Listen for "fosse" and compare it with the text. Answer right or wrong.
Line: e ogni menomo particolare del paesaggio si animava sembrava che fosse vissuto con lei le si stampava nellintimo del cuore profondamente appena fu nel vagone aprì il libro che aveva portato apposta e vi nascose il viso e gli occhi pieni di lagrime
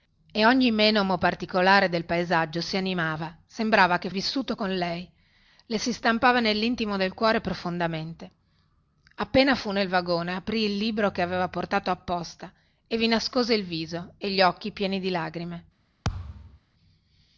wrong